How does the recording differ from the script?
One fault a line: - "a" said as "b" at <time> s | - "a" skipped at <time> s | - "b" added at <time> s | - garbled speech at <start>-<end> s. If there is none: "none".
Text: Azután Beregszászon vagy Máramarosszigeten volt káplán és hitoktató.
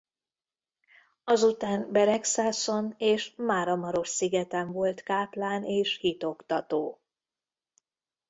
- "vagy" said as "és" at 3.0 s